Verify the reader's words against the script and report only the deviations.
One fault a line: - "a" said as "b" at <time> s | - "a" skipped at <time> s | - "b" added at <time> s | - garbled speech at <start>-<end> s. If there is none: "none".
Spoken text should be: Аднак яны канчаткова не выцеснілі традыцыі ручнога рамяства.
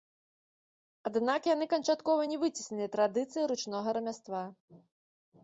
none